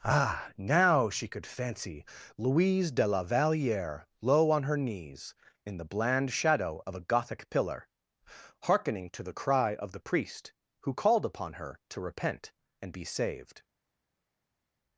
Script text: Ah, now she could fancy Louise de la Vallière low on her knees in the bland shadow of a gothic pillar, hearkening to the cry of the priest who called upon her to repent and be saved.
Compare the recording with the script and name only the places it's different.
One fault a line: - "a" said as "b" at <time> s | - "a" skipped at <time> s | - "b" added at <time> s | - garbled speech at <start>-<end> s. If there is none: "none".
none